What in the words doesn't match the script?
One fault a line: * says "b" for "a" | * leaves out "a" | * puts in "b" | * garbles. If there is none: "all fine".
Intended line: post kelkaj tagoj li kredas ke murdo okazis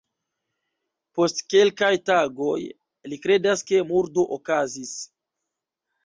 all fine